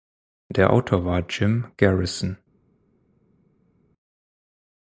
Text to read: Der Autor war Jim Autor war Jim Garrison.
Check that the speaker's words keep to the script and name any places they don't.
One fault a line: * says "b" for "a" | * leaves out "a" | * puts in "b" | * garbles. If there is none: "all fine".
* leaves out "Autor war Jim"